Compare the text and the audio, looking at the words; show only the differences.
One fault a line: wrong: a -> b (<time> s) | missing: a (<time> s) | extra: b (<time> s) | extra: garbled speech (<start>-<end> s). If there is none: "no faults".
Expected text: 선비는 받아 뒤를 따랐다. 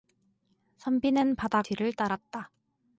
no faults